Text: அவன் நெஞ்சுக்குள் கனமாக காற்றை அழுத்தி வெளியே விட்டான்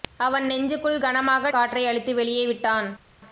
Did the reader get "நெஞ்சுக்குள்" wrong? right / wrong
right